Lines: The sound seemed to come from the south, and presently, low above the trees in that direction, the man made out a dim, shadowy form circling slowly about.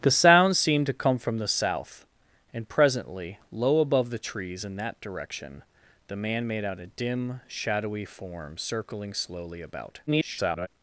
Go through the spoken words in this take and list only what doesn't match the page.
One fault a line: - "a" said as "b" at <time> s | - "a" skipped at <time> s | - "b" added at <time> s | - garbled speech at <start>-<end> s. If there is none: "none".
- garbled speech at 10.1-10.7 s